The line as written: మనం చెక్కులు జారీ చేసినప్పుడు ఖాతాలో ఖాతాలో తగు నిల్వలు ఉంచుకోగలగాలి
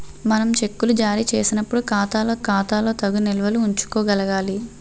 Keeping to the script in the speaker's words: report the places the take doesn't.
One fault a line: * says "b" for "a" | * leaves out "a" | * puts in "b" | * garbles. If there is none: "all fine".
all fine